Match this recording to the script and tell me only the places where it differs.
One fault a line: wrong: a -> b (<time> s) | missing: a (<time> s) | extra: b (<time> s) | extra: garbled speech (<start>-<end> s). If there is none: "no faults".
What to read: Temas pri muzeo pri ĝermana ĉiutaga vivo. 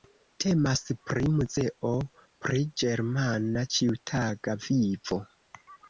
no faults